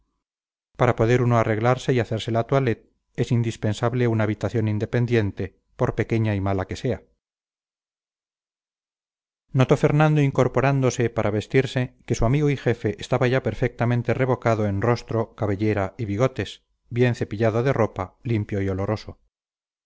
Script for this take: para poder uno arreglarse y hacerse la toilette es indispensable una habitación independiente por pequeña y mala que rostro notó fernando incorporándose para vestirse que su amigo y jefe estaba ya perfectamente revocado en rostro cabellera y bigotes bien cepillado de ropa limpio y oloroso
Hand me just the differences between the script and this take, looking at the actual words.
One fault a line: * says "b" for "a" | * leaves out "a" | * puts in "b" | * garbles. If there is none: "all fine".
* says "sea" for "rostro"